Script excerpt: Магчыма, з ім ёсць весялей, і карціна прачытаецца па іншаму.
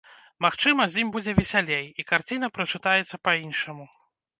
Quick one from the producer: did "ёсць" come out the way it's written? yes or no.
no